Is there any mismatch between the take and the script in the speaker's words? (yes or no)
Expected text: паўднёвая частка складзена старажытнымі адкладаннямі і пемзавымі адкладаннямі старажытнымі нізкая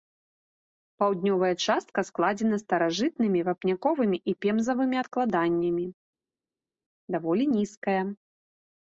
yes